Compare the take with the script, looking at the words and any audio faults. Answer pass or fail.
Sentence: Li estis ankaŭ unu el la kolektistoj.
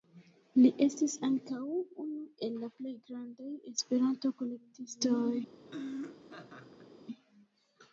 fail